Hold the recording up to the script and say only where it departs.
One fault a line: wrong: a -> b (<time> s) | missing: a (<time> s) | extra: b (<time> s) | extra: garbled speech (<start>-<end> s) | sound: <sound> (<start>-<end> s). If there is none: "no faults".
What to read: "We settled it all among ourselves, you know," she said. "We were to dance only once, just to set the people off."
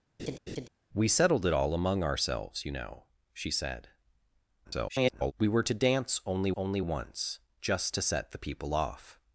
sound: laugh (0.2-0.7 s)
extra: garbled speech (4.6-5.3 s)
extra: only (6.6 s)